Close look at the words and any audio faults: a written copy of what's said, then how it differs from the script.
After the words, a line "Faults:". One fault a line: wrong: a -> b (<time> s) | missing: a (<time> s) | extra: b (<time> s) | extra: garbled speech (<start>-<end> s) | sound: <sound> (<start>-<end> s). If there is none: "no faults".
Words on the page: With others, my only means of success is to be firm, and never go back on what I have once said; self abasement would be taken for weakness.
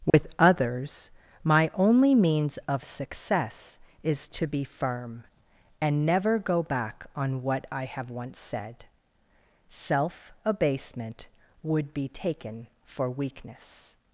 With others, my only means of success is to be firm, and never go back on what I have once said; self abasement would be taken for weakness.
Faults:
sound: dropout (0.1-0.1 s)